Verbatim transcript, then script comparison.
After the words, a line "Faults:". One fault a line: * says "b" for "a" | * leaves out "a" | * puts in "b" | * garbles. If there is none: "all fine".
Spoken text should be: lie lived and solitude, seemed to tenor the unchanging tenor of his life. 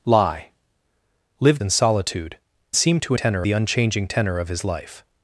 lie lived and solitude, seemed to tenor the unchanging tenor of his life.
Faults:
all fine